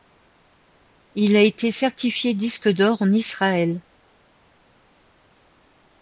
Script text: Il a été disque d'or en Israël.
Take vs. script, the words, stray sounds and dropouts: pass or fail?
fail